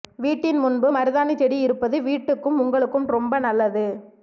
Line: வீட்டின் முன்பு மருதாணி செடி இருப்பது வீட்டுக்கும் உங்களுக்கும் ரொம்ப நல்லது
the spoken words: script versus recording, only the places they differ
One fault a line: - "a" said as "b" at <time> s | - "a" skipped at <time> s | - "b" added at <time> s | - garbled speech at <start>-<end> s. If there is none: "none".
none